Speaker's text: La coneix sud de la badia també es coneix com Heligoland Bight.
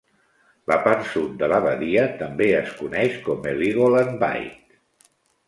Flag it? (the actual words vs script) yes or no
yes